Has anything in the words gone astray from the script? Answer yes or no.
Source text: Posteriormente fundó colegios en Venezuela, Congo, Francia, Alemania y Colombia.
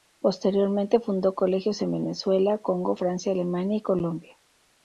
no